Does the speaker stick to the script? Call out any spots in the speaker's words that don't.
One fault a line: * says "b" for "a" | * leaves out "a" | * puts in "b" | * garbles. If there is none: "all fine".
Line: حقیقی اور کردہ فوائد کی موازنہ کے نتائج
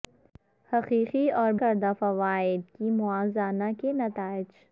all fine